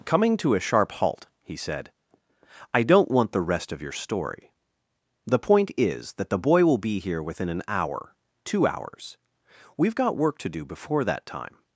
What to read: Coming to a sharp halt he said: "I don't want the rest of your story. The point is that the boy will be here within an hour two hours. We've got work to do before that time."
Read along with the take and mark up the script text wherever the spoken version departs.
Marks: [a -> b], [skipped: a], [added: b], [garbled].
Coming to a sharp halt he said: "I don't want the rest of your story. The point is that the boy will be here within an hour two hours. We've got work to do before that time."